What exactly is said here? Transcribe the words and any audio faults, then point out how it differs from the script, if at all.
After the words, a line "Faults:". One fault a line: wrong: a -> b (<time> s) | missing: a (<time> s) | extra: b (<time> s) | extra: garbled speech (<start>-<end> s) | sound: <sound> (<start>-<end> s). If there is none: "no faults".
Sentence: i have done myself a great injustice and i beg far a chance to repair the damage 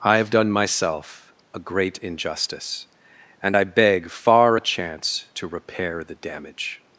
i have done myself a great injustice and i beg far a chance to repair the damage
Faults:
no faults